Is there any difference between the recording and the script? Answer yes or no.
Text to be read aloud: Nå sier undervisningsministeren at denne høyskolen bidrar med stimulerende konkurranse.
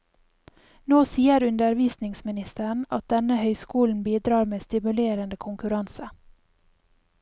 no